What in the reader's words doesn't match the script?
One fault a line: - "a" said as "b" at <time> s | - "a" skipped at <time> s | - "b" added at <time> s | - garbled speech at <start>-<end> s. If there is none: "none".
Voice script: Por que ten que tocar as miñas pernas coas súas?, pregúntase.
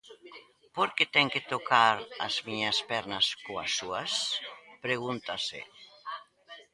none